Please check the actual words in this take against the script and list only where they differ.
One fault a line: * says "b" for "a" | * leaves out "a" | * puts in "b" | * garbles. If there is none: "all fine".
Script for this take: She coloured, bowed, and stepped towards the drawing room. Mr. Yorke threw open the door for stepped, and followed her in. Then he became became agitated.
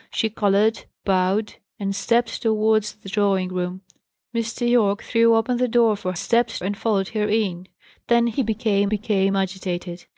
all fine